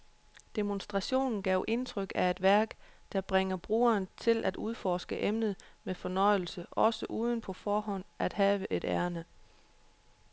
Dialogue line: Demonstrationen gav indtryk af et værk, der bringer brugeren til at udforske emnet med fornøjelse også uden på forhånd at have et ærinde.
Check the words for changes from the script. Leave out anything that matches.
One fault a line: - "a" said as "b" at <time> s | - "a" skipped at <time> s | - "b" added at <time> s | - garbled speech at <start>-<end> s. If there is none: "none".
none